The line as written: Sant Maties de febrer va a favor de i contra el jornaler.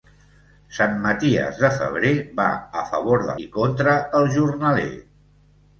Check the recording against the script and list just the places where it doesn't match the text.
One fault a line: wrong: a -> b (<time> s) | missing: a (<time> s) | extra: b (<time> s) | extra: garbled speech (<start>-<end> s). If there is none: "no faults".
no faults